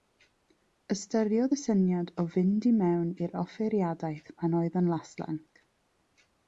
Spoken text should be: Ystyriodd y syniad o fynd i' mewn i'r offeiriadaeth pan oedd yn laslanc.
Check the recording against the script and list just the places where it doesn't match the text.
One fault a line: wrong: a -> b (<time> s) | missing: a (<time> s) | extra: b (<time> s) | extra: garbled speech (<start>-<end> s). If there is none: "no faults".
no faults